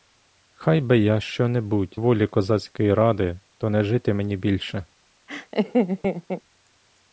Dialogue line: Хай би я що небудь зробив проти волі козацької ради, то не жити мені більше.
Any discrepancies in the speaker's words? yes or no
yes